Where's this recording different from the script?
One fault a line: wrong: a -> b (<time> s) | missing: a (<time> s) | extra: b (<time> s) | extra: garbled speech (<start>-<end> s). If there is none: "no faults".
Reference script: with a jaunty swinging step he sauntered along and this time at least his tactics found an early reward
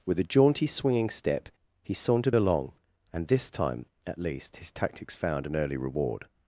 no faults